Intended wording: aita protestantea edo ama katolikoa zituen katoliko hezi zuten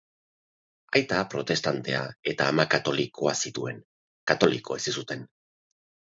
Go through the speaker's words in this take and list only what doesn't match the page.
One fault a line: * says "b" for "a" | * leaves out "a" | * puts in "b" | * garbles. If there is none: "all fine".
* says "eta" for "edo"